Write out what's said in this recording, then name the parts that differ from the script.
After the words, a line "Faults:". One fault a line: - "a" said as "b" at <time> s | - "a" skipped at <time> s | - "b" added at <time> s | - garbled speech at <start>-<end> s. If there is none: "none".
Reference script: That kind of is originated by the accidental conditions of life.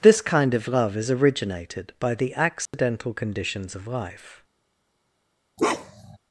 This kind of love is originated by the accidental conditions of life.
Faults:
- "That" said as "This" at 0.0 s
- "love" added at 0.7 s